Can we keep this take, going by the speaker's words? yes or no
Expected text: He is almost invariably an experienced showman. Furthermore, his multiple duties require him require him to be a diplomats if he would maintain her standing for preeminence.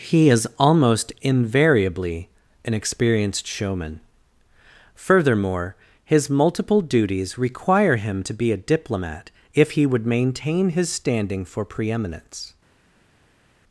no